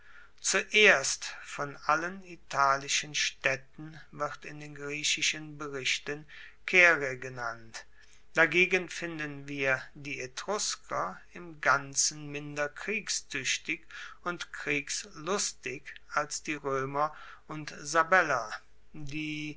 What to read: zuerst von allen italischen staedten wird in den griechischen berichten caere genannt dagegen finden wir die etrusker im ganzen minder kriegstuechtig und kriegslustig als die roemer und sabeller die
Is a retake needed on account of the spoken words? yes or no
no